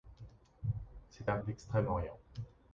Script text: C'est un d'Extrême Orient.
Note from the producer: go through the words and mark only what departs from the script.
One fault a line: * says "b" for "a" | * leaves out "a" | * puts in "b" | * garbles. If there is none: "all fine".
all fine